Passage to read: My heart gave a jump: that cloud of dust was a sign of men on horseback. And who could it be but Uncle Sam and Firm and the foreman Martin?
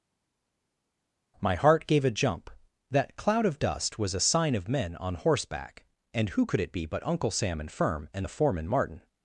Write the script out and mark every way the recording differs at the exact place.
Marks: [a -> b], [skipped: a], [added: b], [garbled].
My heart gave a jump: that cloud of dust was a sign of men on horseback. And who could it be but Uncle Sam and Firm and the foreman Martin?